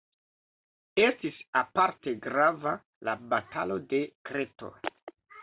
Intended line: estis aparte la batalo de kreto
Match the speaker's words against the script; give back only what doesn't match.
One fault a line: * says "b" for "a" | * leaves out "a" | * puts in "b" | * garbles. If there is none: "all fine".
* puts in "grava"